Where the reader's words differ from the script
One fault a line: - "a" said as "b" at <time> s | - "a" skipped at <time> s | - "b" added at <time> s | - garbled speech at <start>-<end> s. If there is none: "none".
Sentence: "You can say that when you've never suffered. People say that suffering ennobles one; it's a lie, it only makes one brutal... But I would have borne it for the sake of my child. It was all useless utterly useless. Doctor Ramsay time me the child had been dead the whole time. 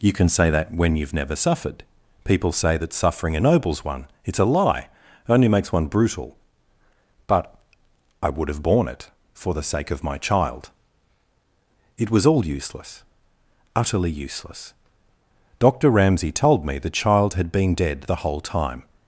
- "time" said as "told" at 16.3 s